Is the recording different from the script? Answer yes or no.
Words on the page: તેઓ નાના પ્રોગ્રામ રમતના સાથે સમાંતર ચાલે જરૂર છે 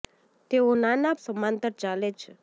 yes